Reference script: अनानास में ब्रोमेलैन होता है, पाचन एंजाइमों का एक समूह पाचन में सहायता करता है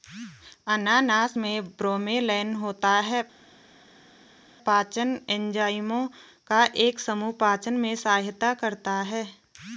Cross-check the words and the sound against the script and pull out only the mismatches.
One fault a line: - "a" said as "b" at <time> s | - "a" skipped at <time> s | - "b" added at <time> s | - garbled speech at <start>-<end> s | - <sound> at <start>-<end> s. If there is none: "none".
none